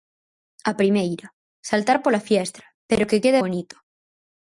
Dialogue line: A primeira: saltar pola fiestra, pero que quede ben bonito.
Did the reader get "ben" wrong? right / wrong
wrong